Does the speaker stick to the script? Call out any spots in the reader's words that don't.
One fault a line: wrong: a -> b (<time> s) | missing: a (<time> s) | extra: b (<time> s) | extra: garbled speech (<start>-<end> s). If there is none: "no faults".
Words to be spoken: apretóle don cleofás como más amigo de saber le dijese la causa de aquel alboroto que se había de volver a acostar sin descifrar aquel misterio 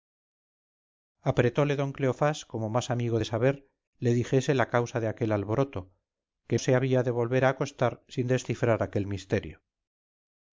no faults